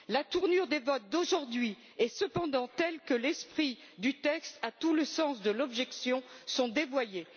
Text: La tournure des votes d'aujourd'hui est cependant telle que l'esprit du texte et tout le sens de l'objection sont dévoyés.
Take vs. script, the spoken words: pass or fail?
pass